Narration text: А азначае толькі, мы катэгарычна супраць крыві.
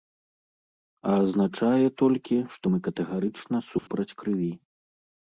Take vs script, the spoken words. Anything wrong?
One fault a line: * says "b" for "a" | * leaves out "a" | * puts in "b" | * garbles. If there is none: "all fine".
* puts in "што"